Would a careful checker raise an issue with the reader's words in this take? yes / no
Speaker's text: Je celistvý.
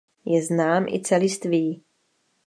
yes